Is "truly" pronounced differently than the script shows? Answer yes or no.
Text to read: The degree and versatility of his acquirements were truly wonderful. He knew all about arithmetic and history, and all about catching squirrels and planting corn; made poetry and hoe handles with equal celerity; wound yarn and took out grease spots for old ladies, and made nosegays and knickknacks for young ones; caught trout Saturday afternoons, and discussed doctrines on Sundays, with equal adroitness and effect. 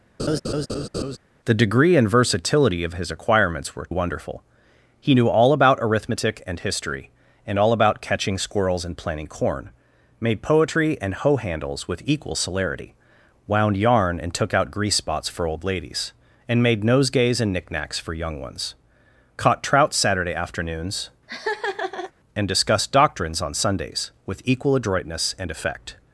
yes